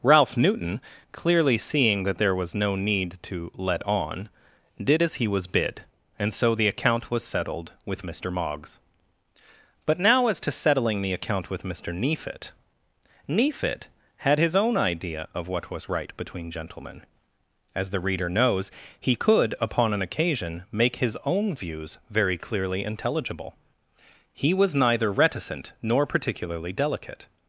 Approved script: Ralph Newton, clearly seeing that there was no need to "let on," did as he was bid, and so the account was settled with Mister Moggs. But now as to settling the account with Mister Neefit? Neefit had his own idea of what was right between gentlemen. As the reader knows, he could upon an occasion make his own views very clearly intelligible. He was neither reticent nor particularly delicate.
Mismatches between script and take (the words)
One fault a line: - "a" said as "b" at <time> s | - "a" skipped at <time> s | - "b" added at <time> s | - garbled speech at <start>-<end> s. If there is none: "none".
none